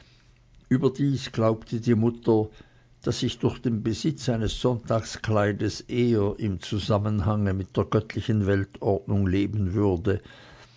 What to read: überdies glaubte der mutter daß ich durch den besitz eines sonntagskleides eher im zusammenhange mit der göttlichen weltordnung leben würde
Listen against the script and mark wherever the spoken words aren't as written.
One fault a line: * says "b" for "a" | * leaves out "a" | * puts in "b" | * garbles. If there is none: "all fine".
* says "die" for "der"